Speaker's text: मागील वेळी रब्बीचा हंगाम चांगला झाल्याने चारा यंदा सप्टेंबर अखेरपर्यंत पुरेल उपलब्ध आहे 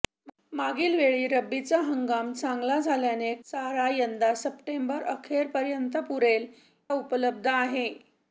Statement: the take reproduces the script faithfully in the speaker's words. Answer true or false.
true